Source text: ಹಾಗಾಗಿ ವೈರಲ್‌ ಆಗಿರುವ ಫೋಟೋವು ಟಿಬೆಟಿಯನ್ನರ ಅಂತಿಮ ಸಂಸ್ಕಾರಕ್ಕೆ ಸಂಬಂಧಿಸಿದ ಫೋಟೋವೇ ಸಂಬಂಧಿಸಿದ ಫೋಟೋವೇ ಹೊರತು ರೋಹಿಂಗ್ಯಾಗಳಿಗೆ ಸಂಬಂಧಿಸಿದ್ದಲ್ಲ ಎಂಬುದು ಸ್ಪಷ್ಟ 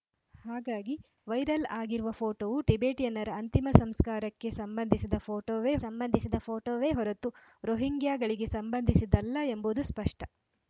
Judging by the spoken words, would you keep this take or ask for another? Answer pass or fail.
pass